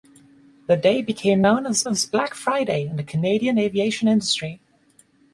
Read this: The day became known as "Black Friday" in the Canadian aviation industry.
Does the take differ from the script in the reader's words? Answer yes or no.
yes